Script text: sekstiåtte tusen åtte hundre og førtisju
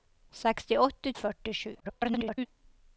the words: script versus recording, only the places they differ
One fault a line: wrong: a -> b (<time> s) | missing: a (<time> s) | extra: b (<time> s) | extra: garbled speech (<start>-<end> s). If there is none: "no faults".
missing: tusen åtte hundre (1.1 s)
extra: garbled speech (1.8-2.5 s)